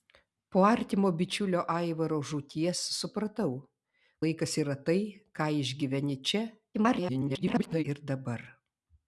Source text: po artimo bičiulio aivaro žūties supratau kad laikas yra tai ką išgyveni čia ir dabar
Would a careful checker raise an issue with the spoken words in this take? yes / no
yes